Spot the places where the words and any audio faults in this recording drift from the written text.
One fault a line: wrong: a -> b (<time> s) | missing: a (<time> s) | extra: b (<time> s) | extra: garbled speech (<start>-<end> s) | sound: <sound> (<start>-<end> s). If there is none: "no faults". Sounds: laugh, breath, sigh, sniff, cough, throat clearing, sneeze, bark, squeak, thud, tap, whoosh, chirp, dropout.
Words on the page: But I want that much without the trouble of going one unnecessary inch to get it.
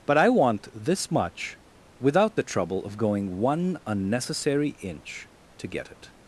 wrong: that -> this (0.7 s)